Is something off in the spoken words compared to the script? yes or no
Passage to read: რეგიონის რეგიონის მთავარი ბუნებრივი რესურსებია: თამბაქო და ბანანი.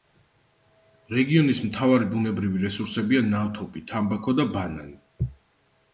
yes